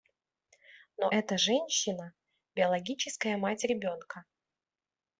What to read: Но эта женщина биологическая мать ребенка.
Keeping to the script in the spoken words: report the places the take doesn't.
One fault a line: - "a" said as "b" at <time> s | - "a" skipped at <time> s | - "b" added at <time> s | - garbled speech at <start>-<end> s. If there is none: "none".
none